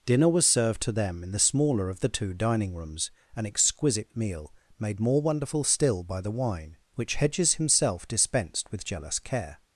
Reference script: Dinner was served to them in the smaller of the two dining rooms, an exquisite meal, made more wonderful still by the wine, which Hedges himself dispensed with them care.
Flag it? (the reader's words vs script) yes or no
yes